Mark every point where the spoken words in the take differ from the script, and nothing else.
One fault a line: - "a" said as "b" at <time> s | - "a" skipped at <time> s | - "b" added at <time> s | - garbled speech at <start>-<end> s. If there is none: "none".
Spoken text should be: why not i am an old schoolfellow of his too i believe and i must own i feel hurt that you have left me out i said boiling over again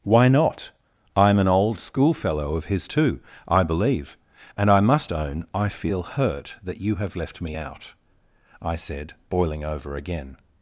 none